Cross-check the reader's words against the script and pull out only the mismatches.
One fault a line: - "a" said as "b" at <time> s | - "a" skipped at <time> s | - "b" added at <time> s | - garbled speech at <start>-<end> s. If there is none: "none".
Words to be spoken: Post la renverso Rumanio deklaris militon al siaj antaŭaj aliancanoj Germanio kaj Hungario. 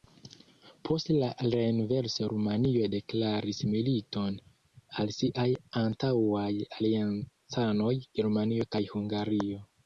none